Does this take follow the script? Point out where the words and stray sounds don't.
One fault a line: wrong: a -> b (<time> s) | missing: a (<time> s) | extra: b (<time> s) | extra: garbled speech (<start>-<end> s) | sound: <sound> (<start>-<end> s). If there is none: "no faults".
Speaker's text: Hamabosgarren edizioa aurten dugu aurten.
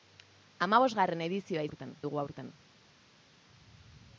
no faults